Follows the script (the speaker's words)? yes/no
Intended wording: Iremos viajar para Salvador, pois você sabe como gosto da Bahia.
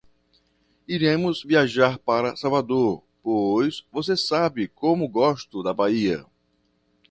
yes